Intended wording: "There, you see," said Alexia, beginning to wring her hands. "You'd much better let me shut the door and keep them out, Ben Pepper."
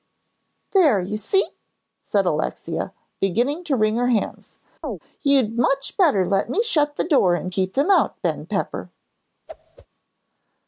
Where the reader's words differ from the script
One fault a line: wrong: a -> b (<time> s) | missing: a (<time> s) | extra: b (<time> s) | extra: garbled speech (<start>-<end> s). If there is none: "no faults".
no faults